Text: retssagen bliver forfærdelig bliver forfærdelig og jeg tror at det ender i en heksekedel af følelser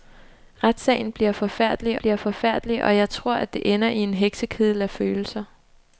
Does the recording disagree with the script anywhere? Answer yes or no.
no